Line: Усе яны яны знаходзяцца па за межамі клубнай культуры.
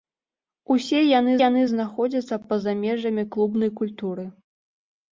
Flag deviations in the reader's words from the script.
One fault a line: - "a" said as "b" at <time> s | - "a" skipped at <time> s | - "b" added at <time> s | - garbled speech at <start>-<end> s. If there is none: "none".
none